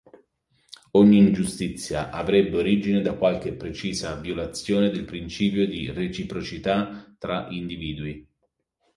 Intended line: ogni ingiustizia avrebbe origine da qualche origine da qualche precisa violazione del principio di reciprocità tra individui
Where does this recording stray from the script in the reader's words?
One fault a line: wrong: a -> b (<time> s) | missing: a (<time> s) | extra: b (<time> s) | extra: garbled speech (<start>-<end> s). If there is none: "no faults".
missing: origine da qualche (3.5 s)